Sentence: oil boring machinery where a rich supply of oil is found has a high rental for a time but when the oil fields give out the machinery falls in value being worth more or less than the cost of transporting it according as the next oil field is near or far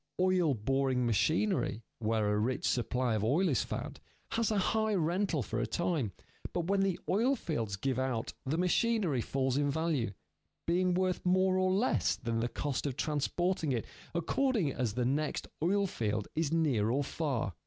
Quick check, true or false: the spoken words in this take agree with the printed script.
true